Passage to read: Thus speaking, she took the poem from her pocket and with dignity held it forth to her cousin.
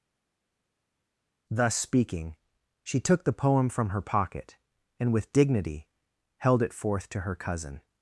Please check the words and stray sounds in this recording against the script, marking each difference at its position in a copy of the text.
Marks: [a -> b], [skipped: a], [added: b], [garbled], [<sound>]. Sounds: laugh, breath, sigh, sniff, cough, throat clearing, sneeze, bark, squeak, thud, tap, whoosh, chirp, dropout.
Thus speaking, she took the poem from her pocket and with dignity held it forth to her cousin.